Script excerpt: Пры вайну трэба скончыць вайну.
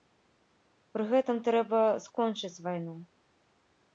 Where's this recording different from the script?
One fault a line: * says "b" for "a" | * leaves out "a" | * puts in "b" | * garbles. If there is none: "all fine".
* says "гэтым" for "вайну"